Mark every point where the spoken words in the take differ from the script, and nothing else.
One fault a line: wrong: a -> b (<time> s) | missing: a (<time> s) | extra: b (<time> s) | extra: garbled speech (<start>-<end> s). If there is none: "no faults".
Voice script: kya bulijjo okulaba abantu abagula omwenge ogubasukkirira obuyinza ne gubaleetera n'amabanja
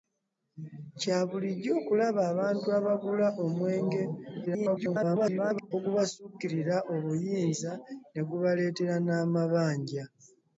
extra: garbled speech (4.5-5.7 s)